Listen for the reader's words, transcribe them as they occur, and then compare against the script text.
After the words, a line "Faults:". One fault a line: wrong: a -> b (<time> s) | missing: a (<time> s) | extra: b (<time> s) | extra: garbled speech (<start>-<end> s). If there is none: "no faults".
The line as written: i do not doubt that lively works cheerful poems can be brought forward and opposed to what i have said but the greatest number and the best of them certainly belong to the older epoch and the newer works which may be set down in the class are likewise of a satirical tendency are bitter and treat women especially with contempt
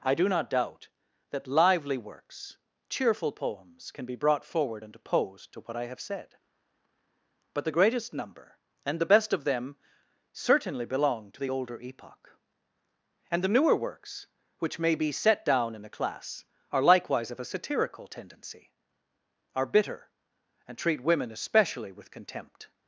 i do not doubt that lively works cheerful poems can be brought forward and opposed to what i have said but the greatest number and the best of them certainly belong to the older epoch and the newer works which may be set down in a class are likewise of a satirical tendency are bitter and treat women especially with contempt
Faults:
wrong: the -> a (15.8 s)